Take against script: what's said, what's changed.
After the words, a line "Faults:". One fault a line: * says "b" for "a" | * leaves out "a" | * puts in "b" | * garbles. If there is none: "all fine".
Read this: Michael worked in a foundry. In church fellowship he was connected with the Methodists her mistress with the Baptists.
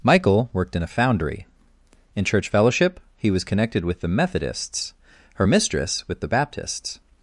Michael worked in a foundry. In church fellowship he was connected with the Methodists her mistress with the Baptists.
Faults:
all fine